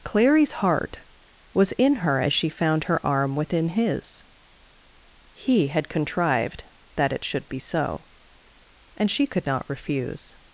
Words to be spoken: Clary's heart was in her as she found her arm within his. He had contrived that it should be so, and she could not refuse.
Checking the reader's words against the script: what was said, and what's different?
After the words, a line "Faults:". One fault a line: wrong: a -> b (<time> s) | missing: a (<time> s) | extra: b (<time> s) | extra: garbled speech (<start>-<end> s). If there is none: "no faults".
Clary's heart was in her as she found her arm within his. He had contrived that it should be so, and she could not refuse.
Faults:
no faults